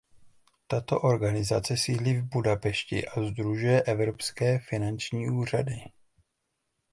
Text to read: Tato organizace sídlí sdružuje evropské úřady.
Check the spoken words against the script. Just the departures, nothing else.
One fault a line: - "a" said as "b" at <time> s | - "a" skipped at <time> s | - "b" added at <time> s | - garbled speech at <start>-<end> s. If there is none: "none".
- "v Budapešti a" added at 2.1 s
- "finanční" added at 4.6 s